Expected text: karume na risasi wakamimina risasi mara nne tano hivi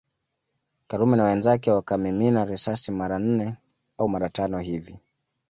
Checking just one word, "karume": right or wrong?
right